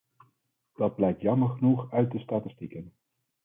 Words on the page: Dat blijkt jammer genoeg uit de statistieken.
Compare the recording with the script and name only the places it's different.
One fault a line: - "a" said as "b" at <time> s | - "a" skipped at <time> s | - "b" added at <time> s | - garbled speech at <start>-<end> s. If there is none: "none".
none